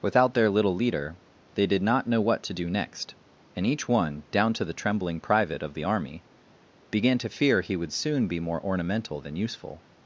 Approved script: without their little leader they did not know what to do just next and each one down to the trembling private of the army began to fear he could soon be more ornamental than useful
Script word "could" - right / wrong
wrong